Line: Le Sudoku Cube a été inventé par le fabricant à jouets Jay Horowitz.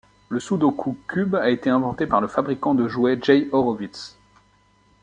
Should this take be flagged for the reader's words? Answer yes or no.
yes